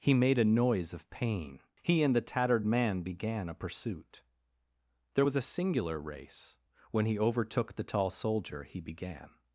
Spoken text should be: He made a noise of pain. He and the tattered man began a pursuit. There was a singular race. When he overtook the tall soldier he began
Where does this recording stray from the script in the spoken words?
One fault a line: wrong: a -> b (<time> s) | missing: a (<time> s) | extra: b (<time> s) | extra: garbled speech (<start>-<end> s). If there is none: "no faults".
no faults